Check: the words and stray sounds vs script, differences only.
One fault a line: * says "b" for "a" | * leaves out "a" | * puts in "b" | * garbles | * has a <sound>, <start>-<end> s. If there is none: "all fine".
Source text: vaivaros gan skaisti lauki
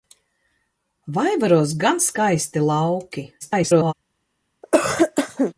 * garbles
* has a cough, 4.6-5.5 s